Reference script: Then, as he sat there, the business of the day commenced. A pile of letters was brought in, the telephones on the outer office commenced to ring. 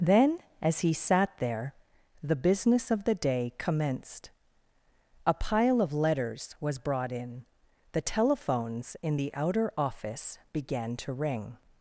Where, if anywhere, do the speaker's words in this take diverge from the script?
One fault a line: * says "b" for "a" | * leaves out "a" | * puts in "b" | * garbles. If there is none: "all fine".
* says "in" for "on"
* says "began" for "commenced"